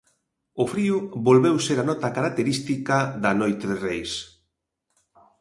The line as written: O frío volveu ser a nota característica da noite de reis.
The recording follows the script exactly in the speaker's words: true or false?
true